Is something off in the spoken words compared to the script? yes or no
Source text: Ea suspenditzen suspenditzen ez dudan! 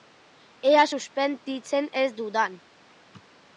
yes